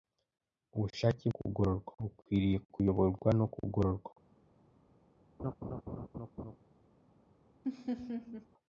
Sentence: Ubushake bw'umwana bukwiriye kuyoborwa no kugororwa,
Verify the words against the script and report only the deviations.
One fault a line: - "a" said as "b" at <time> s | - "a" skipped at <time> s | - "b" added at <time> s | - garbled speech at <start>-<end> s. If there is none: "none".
- "bw'umwana" said as "kugororwa" at 1.4 s